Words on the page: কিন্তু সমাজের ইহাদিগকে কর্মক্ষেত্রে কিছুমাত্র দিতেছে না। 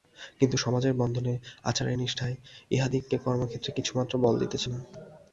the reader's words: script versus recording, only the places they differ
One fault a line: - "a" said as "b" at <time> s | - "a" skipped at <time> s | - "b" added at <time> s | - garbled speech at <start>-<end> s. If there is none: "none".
- "বন্ধনে আচারের নিষ্ঠায়" added at 0.9 s
- "বল" added at 4.2 s